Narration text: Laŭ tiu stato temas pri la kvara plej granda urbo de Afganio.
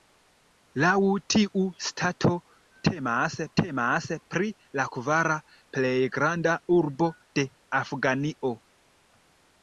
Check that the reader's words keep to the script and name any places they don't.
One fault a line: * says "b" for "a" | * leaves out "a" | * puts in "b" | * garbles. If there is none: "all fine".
* puts in "temas"